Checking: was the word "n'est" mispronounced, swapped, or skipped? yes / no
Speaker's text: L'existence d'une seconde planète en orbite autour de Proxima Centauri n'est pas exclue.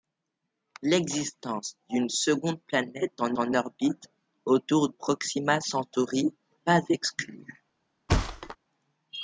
yes